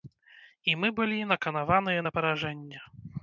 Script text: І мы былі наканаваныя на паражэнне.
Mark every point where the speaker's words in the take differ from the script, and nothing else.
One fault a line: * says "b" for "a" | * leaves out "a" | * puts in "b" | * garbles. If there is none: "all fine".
all fine